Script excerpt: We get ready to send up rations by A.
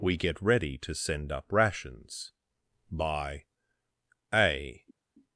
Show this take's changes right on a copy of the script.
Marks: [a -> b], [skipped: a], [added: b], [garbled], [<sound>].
We get ready to send up rations by A.